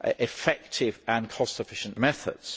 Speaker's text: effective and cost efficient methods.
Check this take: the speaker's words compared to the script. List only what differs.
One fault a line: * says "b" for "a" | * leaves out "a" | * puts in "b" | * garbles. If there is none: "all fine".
all fine